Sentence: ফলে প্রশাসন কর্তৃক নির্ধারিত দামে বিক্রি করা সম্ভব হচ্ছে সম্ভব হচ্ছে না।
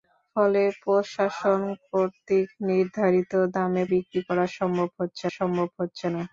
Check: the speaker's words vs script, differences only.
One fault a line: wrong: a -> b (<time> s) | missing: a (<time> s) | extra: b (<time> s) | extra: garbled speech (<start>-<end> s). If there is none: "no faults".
no faults